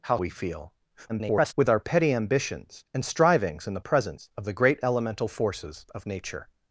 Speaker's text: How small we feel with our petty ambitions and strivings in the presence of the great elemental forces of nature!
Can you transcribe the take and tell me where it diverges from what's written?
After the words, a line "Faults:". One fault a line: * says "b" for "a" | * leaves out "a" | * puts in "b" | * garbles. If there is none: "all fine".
How we feel [garbled] with our petty ambitions and strivings in the presence of the great elemental forces of nature!
Faults:
* leaves out "small"
* garbles